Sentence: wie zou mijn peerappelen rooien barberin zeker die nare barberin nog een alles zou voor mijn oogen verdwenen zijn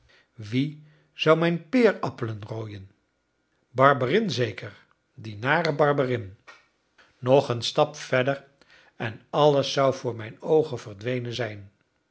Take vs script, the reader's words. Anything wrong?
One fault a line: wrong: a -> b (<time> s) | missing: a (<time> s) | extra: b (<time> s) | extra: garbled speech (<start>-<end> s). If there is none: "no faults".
extra: stap verder en (7.6 s)